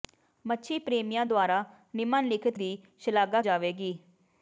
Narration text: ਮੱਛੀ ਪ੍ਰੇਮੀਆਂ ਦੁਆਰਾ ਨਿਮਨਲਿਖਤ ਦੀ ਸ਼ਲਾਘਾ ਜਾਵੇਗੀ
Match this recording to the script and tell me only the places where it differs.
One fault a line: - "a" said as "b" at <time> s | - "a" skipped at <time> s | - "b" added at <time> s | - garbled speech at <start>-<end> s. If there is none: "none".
none